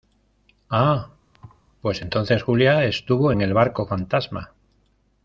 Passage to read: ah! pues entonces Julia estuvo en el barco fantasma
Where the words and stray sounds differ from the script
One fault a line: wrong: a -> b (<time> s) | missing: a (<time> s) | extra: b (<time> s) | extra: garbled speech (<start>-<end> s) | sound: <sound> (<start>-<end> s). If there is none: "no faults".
sound: thud (1.3-1.6 s)